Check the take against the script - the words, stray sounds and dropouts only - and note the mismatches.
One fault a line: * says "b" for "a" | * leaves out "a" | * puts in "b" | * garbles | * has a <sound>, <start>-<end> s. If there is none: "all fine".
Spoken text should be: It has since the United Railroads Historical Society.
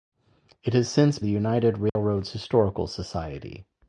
* has a dropout, 1.9-2.0 s